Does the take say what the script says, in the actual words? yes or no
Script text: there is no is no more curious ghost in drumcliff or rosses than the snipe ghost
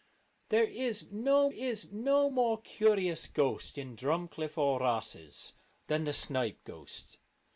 yes